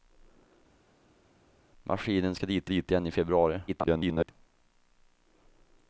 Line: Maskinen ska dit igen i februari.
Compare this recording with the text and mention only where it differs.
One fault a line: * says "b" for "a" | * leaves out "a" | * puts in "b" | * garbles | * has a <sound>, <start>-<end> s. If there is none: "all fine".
* puts in "dit"
* garbles